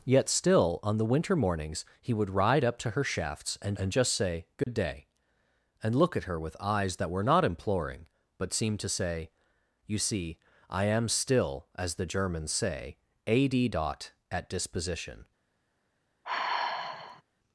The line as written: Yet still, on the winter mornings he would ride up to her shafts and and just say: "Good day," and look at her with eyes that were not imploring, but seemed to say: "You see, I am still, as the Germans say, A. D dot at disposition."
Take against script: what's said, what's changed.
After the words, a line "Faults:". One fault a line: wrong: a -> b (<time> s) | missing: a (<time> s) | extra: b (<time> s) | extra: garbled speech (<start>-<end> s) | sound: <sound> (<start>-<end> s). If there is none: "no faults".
Yet still, on the winter mornings he would ride up to her shafts and and just say: "Good day," and look at her with eyes that were not imploring, but seemed to say: "You see, I am still, as the Germans say, A. D dot at disposition."
Faults:
sound: dropout (4.6-4.7 s)
sound: sigh (16.2-17.2 s)